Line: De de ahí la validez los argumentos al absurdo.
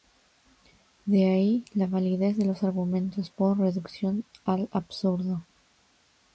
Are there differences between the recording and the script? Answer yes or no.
yes